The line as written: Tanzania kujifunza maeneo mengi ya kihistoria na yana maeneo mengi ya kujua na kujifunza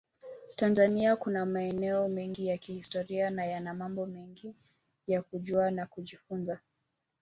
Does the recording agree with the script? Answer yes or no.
no